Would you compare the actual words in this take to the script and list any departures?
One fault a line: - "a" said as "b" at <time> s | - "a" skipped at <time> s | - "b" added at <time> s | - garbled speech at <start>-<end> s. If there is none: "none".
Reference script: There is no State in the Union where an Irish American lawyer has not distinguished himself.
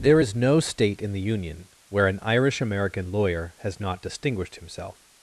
none